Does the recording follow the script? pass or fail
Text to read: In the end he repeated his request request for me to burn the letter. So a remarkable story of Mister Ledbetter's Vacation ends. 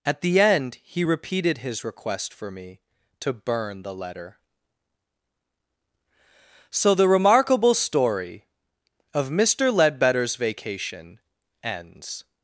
fail